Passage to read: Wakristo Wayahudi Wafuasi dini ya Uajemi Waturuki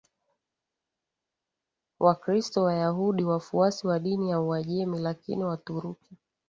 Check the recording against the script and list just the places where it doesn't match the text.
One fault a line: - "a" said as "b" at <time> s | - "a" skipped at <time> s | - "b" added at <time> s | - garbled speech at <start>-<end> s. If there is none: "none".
- "wa" added at 3.9 s
- "Lakini" added at 5.0 s